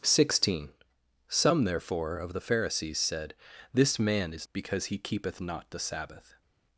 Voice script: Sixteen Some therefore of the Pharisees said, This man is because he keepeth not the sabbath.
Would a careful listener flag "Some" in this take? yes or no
no